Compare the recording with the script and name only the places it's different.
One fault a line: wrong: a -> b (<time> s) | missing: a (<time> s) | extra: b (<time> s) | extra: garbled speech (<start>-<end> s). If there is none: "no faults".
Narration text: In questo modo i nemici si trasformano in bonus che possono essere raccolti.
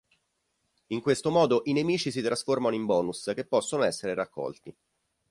no faults